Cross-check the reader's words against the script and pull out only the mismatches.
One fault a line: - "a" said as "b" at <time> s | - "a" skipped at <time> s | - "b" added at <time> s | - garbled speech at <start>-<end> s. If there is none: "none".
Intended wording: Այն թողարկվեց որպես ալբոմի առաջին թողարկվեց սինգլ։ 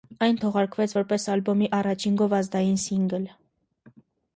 - "թողարկվեց" said as "գովազդային" at 2.3 s